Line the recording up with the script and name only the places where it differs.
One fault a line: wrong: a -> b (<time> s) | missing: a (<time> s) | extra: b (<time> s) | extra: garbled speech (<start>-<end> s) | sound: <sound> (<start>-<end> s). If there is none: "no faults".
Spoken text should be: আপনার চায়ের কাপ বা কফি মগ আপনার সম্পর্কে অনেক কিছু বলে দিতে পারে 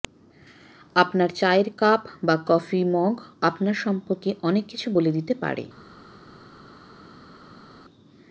no faults